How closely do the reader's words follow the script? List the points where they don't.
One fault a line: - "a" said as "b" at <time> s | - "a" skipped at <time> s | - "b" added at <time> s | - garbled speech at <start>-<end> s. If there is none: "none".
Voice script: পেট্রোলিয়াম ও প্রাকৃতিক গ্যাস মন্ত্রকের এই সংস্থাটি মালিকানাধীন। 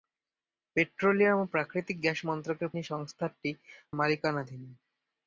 none